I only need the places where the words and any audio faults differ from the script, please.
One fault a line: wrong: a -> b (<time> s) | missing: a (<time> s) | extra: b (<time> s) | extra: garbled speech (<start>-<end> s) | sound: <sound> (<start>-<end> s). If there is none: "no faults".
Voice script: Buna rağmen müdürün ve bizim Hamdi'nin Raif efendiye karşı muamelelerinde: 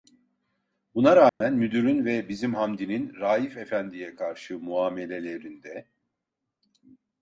sound: dropout (1.3-1.4 s)